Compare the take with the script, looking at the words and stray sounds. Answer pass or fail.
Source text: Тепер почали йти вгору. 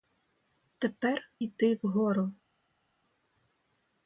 fail